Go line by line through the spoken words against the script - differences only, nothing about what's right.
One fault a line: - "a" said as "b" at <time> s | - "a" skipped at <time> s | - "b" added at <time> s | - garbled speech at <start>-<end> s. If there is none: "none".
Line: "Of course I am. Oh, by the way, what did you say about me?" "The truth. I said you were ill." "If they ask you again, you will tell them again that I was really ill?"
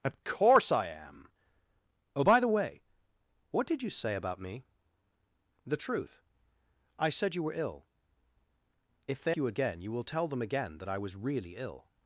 - "ask" skipped at 9.3 s